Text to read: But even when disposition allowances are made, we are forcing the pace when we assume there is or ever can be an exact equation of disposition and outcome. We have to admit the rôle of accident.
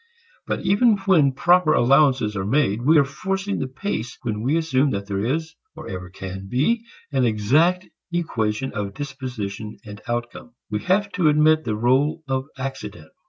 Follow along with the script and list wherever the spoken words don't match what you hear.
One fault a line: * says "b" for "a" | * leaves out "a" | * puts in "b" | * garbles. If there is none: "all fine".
* says "proper" for "disposition"
* puts in "that"